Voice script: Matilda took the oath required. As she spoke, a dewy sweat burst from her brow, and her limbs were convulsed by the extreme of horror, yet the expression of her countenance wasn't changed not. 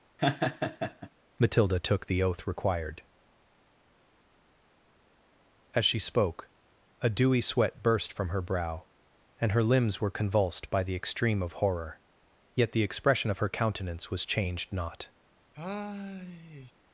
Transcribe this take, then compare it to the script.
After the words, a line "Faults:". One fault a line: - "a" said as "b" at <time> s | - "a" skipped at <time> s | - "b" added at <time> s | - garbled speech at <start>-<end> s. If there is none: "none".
Matilda took the oath required. As she spoke, a dewy sweat burst from her brow, and her limbs were convulsed by the extreme of horror, yet the expression of her countenance was changed not.
Faults:
- "wasn't" said as "was" at 14.1 s